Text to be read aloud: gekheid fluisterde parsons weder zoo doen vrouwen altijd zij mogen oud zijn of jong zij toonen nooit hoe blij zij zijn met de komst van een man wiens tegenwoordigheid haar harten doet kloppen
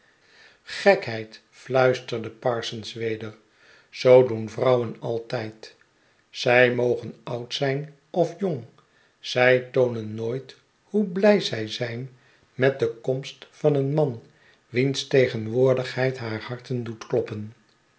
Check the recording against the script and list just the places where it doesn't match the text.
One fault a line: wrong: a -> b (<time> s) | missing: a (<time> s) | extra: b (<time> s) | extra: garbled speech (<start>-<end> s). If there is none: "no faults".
no faults